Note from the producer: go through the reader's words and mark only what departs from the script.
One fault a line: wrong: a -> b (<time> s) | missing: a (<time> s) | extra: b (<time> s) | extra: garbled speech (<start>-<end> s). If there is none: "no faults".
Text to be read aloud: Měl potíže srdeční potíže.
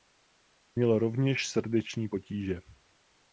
wrong: potíže -> rovněž (1.0 s)